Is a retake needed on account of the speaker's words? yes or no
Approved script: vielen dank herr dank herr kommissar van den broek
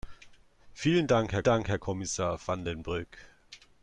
no